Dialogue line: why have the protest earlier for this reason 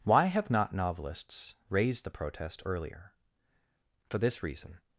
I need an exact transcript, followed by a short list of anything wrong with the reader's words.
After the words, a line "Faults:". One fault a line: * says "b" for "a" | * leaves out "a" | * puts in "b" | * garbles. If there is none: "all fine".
why have not novelists raised the protest earlier for this reason
Faults:
* puts in "not novelists raised"